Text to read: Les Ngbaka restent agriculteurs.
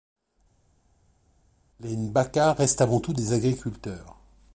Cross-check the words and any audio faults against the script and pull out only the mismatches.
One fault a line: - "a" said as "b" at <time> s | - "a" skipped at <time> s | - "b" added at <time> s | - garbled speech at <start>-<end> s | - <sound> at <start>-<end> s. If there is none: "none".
- "avant tout des" added at 2.8 s